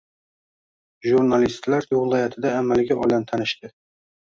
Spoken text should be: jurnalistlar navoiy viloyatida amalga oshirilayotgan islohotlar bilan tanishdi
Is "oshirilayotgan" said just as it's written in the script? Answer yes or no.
no